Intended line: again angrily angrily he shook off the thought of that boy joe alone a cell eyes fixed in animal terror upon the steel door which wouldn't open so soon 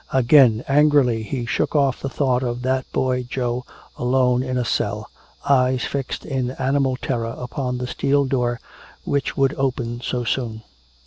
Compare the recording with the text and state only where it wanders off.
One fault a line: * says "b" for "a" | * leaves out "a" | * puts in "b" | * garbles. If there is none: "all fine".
* leaves out "angrily"
* puts in "in"
* says "would" for "wouldn't"